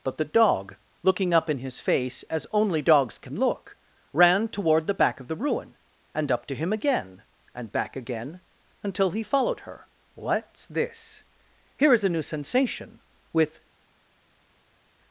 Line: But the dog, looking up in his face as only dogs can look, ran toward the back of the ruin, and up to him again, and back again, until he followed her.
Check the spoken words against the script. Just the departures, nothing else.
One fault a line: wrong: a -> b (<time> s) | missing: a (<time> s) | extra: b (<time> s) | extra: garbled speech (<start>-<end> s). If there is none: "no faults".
extra: What's this Here is a new sensation with (10.1 s)